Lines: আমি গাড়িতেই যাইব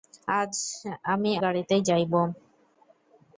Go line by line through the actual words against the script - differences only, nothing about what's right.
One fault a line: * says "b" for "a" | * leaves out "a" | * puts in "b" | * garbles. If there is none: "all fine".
all fine